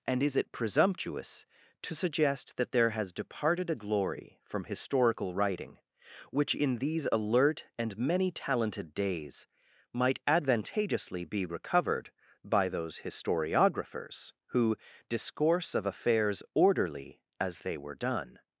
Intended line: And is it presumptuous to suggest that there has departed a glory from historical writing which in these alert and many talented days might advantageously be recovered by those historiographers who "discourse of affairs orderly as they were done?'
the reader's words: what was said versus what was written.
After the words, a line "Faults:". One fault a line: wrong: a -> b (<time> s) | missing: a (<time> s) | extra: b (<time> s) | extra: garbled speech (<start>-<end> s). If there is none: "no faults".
And is it presumptuous to suggest that there has departed a glory from historical writing which in these alert and many talented days might advantageously be recovered by those historiographers who "discourse of affairs orderly as they were done?'
Faults:
no faults